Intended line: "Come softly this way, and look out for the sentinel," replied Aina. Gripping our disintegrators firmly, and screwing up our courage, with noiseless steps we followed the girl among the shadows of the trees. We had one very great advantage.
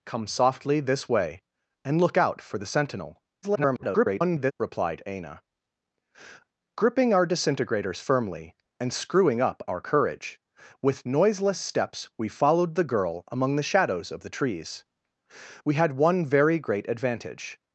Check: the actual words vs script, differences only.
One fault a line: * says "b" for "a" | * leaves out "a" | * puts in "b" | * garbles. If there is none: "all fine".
* garbles